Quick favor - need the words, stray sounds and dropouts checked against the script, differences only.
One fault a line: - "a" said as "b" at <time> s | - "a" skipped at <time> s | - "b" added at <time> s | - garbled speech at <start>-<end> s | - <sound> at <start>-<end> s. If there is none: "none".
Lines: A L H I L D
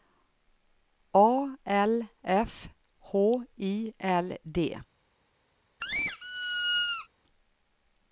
- "F" added at 2.2 s
- squeak at 5.8-7.1 s